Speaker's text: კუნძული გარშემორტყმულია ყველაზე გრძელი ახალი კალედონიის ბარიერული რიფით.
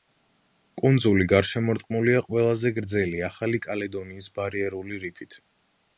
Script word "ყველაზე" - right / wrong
right